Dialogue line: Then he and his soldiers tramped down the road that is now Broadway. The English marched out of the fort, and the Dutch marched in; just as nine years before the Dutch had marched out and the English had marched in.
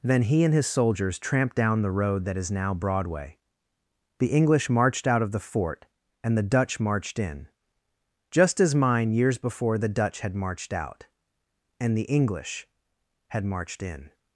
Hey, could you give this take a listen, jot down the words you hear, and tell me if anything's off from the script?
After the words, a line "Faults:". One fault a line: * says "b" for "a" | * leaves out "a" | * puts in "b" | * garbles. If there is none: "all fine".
Then he and his soldiers tramped down the road that is now Broadway. The English marched out of the fort, and the Dutch marched in; just as mine years before the Dutch had marched out and the English had marched in.
Faults:
* says "mine" for "nine"